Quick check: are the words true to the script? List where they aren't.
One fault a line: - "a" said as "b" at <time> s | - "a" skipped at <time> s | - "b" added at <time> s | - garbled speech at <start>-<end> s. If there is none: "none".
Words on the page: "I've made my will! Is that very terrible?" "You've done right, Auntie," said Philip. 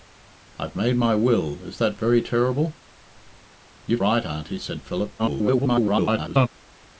- "done" skipped at 4.0 s
- garbled speech at 5.2-6.5 s